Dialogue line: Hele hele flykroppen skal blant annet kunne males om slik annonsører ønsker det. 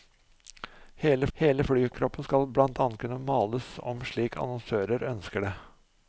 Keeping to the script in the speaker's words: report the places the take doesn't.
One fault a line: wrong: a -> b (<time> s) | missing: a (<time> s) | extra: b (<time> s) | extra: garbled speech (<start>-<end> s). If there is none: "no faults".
no faults